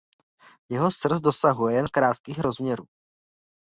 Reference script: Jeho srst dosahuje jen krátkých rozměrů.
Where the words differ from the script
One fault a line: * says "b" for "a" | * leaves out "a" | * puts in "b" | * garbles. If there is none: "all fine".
all fine